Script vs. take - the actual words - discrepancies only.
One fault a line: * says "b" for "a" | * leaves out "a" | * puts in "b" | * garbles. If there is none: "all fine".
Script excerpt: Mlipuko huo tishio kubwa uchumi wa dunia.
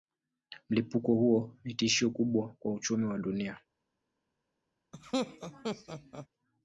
* puts in "ni"
* puts in "kwa"